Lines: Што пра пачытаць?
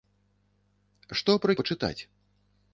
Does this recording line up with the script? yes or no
yes